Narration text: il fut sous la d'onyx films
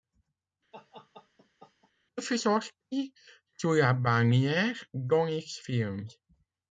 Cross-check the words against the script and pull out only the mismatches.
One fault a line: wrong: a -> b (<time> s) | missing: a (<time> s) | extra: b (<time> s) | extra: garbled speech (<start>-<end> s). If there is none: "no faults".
extra: sorti (2.4 s)
extra: bannière (3.9 s)